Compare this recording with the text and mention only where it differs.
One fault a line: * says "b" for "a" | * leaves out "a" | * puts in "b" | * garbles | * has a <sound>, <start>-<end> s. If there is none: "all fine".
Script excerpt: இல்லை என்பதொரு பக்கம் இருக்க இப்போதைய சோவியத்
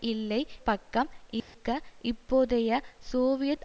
* leaves out "என்பதொரு"
* has a dropout, 1.4-1.5 s